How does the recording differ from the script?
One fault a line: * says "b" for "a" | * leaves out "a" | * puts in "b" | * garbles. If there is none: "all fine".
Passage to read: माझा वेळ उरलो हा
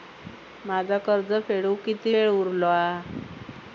* puts in "कर्ज फेडुक किती"